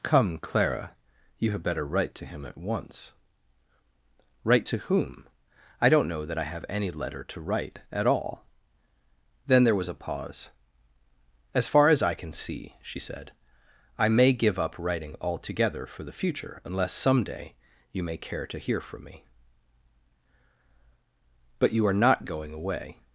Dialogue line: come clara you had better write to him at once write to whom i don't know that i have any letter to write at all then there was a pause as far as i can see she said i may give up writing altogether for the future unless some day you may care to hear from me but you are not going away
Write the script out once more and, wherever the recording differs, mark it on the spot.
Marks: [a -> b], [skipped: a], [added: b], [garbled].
come clara you had better write to him at once write to whom i don't know that i have any letter to write at all then there was a pause as far as i can see she said i may give up writing altogether for the future unless some day you may care to hear from me but you are not going away